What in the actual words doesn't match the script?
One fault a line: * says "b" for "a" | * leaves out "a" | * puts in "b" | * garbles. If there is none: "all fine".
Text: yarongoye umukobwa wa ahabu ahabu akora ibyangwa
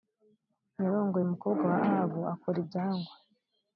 * leaves out "ahabu"